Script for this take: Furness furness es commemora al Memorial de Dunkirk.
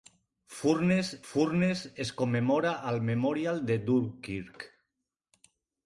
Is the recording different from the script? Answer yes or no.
no